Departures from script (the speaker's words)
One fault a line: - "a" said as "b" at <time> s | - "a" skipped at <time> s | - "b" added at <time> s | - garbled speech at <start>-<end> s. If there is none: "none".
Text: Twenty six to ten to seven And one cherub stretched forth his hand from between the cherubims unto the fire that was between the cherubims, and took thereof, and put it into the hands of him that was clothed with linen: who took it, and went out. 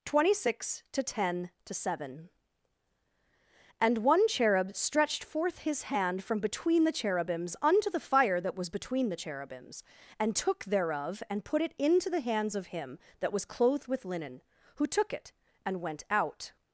none